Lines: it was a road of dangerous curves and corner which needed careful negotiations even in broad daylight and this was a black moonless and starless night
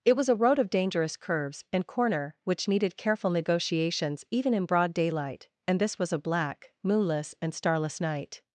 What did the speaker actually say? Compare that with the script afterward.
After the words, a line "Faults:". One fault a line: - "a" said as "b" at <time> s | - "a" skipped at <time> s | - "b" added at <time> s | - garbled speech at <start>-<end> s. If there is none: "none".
it was a road of dangerous curves and corner which needed careful negotiations even in broad daylight and this was a black moonless and starless night
Faults:
none